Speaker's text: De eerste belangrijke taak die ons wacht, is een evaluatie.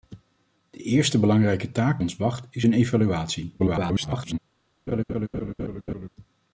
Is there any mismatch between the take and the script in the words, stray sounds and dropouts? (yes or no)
yes